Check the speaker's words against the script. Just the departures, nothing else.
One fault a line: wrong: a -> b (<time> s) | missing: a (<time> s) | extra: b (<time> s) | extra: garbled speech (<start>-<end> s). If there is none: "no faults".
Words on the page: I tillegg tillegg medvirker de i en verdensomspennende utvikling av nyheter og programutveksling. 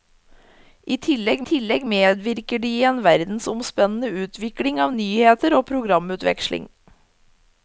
no faults